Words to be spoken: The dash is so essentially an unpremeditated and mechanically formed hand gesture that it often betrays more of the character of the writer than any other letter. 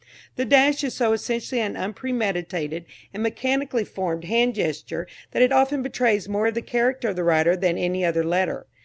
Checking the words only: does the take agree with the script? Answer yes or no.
yes